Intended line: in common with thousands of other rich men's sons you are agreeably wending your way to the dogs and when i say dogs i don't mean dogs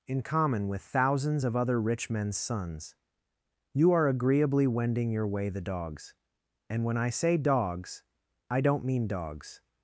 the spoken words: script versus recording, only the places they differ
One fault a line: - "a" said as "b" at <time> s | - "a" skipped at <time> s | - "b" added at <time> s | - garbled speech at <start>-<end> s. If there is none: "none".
- "to" skipped at 5.5 s